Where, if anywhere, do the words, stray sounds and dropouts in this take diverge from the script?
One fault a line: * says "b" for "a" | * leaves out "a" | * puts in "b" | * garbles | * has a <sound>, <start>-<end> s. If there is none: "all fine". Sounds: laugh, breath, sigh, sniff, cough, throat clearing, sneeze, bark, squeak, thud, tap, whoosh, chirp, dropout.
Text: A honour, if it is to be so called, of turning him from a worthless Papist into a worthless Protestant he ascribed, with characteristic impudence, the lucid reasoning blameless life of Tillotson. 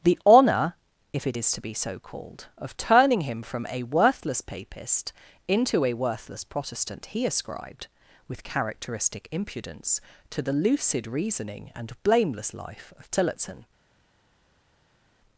* says "The" for "A"
* puts in "to"
* puts in "and"